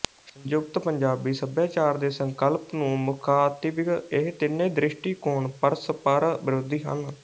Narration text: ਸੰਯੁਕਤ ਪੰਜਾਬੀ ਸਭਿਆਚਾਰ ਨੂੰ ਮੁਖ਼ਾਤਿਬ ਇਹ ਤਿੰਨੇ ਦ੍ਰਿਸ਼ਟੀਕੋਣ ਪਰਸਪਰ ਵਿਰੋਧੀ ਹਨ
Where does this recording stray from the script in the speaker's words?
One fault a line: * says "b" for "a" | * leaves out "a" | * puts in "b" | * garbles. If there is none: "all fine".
* puts in "ਦੇ ਸੰਕਲਪ"